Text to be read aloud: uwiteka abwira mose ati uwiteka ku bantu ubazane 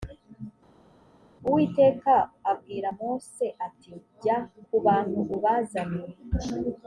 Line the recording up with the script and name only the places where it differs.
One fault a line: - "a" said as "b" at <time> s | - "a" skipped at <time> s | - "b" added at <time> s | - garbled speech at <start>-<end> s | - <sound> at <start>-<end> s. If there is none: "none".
- "uwiteka" said as "jya" at 4.2 s